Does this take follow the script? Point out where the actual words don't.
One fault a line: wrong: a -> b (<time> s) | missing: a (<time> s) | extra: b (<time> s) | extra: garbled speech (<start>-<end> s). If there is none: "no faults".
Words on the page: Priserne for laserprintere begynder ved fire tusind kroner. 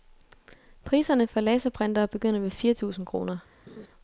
no faults